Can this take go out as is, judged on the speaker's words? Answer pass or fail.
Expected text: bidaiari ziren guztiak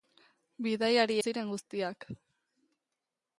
pass